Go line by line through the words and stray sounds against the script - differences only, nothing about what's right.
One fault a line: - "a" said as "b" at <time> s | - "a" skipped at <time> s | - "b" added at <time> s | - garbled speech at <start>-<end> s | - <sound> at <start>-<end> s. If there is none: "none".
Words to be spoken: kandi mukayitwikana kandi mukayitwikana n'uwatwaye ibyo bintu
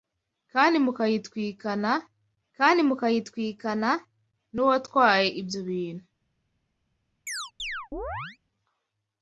- chirp at 7.3-8.4 s